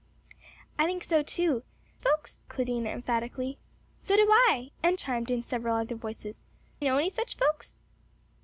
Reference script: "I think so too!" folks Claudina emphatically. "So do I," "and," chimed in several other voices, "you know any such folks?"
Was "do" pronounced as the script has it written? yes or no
yes